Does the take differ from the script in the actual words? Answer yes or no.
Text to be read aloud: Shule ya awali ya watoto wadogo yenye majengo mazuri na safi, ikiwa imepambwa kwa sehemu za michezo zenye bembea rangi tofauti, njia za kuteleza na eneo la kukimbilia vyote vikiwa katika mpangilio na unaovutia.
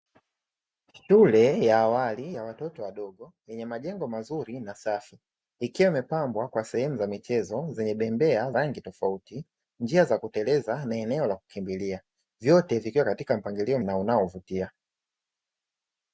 no